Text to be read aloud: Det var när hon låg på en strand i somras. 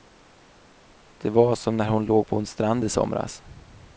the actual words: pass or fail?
fail